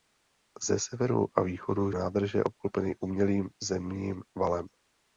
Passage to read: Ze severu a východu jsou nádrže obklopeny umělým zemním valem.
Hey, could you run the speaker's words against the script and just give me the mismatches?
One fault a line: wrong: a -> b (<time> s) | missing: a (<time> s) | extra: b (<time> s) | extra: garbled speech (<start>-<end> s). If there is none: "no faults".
missing: jsou (1.9 s)